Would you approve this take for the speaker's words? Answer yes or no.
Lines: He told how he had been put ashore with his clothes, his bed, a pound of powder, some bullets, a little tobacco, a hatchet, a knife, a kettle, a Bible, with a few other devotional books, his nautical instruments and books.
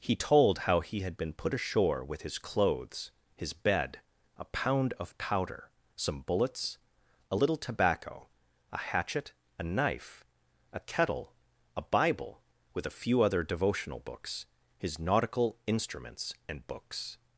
yes